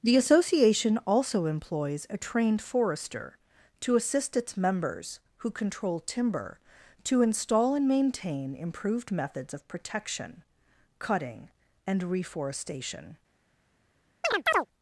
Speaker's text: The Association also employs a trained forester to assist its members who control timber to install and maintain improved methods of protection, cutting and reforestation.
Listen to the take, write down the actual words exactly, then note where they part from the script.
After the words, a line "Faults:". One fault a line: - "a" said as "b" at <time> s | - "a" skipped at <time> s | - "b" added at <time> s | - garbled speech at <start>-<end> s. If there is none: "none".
The Association also employs a trained forester to assist its members who control timber to install and maintain improved methods of protection, cutting and reforestation.
Faults:
none